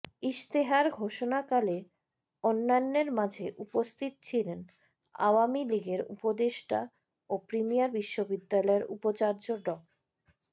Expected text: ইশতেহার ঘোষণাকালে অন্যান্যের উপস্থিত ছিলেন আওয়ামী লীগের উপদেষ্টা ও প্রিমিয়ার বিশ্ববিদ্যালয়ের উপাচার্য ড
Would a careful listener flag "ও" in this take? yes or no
no